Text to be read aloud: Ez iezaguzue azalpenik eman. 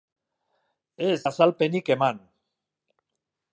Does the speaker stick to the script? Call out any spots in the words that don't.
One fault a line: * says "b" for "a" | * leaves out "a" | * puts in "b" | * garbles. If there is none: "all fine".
* leaves out "iezaguzue"